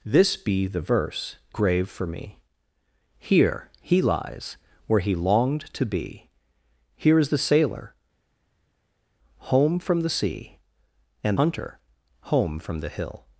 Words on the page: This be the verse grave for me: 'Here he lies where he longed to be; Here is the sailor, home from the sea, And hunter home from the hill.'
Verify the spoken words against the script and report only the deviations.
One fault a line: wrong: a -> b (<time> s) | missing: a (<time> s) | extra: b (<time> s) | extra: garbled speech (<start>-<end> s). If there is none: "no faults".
no faults